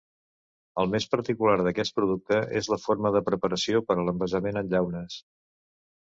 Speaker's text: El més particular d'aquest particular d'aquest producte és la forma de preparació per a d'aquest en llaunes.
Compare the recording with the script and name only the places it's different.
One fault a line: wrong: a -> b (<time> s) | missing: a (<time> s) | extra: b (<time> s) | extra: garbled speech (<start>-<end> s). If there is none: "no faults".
missing: particular d'aquest (1.9 s)
wrong: d'aquest -> l'envasament (4.1 s)